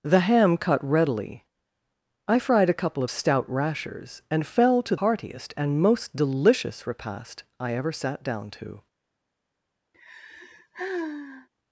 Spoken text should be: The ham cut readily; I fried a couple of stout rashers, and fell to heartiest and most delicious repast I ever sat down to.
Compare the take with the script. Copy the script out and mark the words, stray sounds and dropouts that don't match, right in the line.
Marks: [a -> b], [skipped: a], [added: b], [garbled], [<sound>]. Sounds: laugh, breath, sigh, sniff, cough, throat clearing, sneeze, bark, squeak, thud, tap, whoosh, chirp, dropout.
The ham cut readily; I fried a couple of stout rashers, and fell to heartiest and most delicious repast I ever sat down to. [sigh]